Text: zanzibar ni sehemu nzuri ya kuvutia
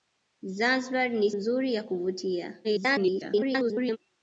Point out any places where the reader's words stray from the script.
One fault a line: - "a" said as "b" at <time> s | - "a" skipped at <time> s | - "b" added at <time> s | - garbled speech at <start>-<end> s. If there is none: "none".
- "sehemu" skipped at 1.3 s
- garbled speech at 2.6-4.0 s